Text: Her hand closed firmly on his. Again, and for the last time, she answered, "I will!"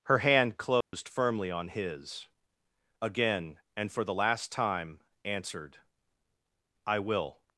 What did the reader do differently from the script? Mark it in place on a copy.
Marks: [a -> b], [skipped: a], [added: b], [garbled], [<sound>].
Her hand closed [dropout] firmly on his. Again, and for the last time, [skipped: she] answered, "I will!"